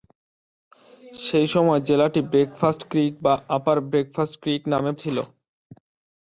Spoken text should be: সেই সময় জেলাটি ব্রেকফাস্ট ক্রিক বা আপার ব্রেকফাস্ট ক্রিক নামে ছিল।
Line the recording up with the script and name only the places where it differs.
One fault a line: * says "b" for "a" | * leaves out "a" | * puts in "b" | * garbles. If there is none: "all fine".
all fine